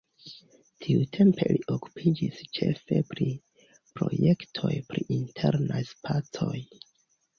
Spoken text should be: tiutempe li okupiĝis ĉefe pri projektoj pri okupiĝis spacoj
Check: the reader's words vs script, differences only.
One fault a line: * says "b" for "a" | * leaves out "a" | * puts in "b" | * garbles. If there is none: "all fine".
* says "internaj" for "okupiĝis"